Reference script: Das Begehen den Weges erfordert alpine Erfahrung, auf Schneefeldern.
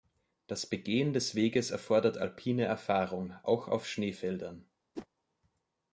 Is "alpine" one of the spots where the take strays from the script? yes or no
no